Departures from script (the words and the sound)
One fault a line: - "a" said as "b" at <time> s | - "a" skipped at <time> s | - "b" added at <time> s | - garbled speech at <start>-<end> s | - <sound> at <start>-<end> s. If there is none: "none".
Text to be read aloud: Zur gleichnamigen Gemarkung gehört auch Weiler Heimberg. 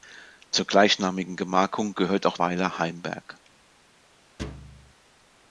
- thud at 4.4-4.9 s